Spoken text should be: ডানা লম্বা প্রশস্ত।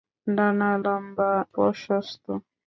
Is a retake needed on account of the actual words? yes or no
no